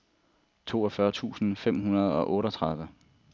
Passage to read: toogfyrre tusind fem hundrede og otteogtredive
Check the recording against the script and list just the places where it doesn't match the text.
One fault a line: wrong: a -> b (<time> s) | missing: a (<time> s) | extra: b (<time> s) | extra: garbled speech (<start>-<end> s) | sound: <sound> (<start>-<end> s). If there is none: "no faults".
no faults